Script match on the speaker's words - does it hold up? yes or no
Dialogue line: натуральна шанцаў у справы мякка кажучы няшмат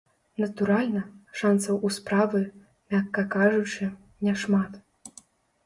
yes